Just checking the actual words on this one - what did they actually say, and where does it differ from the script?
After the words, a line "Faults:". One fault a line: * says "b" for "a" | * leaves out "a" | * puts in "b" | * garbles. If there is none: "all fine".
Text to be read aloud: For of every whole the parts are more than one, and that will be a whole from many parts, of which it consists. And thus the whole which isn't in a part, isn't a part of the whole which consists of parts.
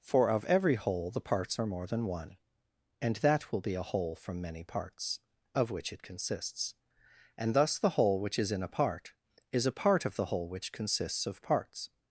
For of every whole the parts are more than one, and that will be a whole from many parts, of which it consists. And thus the whole which is in a part, is a part of the whole which consists of parts.
Faults:
* says "is" for "isn't"
* says "is" for "isn't"